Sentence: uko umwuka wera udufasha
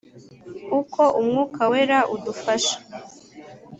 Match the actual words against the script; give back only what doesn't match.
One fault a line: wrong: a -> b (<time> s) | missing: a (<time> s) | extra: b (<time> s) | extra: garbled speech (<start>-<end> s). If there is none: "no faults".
no faults